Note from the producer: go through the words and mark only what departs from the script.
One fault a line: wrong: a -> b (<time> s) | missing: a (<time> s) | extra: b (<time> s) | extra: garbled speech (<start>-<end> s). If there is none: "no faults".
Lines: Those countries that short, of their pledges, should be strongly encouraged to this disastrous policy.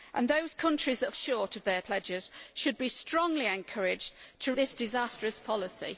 no faults